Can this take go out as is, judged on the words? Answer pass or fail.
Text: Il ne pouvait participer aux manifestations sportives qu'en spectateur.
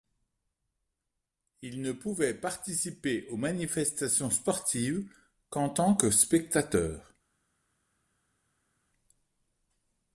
fail